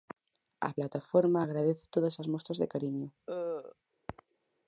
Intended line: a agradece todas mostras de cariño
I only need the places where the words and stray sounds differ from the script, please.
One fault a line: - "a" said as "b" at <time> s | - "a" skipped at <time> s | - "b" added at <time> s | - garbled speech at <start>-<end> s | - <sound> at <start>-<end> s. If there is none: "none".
- "plataforma" added at 0.8 s
- "as" added at 2.2 s
- cough at 3.3-3.8 s